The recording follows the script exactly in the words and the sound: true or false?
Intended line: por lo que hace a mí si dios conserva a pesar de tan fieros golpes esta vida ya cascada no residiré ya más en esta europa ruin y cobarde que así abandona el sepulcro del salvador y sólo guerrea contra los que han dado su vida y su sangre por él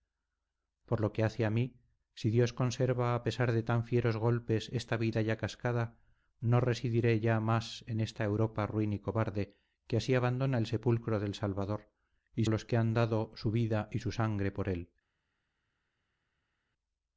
false